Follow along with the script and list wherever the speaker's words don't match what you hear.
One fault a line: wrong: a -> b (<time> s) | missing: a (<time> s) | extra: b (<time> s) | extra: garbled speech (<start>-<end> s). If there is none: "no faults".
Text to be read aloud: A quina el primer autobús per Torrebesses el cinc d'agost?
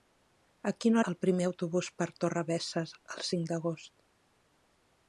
no faults